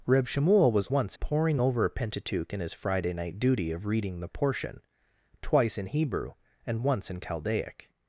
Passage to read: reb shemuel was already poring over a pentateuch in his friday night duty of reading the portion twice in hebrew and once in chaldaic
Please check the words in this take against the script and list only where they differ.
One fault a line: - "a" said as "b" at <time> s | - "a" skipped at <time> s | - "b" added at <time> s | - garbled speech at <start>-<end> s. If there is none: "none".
- "already" said as "once" at 0.9 s